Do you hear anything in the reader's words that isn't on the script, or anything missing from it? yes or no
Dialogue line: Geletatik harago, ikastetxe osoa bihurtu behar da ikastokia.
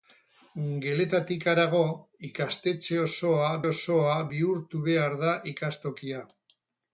yes